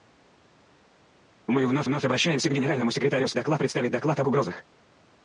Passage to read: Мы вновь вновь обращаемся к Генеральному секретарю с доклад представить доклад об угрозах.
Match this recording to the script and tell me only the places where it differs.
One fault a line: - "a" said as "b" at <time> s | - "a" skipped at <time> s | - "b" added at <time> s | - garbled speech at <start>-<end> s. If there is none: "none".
none